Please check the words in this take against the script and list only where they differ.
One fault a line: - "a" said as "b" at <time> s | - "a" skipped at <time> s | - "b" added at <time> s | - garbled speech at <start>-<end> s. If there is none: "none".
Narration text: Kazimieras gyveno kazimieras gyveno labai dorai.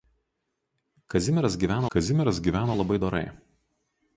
none